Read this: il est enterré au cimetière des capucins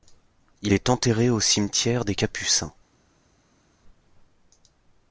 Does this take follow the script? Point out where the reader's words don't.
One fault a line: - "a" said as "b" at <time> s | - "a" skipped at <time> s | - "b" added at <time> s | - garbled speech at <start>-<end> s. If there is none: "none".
none